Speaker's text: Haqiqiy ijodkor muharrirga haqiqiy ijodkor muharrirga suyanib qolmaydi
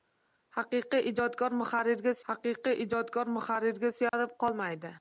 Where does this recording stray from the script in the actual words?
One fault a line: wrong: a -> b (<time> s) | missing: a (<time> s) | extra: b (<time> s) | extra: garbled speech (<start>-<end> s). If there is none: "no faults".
no faults